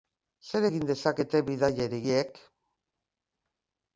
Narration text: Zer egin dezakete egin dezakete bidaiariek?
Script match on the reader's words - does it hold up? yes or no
no